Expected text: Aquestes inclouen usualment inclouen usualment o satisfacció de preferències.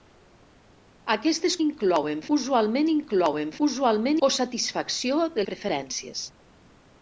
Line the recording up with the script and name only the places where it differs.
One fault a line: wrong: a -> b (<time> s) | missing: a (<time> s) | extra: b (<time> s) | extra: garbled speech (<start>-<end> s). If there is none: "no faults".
no faults